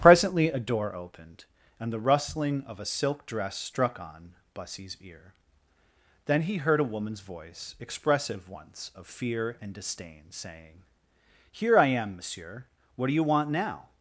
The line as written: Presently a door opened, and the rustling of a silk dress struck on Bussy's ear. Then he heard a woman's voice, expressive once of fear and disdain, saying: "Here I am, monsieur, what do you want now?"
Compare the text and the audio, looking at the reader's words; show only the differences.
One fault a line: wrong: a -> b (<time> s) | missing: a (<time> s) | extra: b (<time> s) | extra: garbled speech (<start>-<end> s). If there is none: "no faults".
no faults